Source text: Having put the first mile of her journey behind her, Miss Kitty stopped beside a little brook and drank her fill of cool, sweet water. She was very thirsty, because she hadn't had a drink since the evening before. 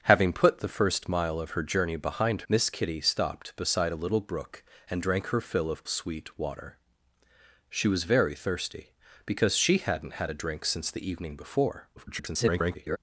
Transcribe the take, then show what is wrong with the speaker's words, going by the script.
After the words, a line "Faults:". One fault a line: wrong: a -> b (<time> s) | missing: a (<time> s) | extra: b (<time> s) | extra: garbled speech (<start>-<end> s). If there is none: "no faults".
Having put the first mile of her journey behind Miss Kitty stopped beside a little brook and drank her fill of sweet water. She was very thirsty, because she hadn't had a drink since the evening before. [garbled]
Faults:
missing: her (2.4 s)
missing: cool (5.9 s)
extra: garbled speech (12.0-13.0 s)